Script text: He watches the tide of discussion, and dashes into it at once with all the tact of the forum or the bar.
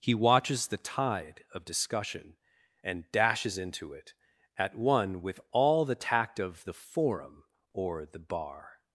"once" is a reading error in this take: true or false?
true